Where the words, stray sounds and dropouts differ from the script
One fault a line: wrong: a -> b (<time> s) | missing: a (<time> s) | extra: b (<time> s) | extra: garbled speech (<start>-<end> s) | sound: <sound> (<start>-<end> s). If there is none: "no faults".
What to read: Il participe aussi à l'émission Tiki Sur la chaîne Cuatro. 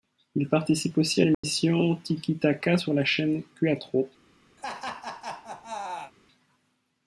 sound: dropout (1.3-1.4 s)
extra: Taka (2.4 s)
sound: laugh (4.6-6.1 s)